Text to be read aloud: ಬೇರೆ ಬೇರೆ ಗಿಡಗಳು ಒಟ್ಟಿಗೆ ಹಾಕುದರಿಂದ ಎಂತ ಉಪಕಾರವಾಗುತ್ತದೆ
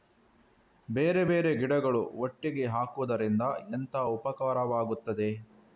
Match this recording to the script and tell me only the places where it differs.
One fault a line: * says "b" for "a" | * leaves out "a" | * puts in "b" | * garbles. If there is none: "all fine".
all fine